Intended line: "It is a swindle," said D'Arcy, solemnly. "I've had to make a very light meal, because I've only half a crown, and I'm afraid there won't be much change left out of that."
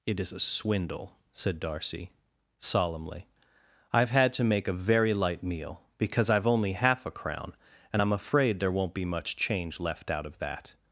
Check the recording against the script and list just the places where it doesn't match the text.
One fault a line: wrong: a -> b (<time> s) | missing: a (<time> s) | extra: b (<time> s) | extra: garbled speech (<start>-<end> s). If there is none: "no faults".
no faults